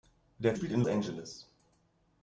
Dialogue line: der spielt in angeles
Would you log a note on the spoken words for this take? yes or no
no